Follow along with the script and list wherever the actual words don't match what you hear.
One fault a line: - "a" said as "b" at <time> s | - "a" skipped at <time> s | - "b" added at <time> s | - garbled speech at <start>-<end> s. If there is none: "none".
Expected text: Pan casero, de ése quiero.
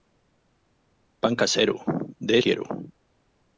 - "ése" skipped at 2.4 s